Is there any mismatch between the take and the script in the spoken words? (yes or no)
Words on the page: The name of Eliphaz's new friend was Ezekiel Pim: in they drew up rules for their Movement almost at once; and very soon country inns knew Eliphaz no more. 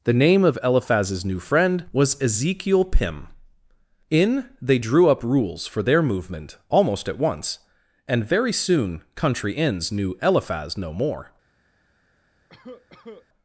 no